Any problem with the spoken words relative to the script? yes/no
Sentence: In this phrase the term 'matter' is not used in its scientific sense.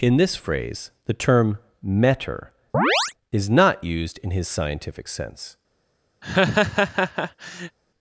yes